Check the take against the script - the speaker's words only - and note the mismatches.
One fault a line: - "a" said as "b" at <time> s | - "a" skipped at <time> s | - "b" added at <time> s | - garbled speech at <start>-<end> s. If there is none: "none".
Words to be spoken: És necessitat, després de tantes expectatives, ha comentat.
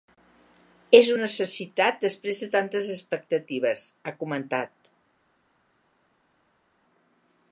none